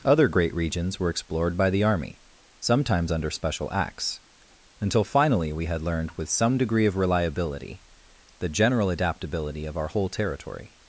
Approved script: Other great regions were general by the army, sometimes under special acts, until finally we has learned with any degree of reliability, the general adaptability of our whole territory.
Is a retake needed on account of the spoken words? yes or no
yes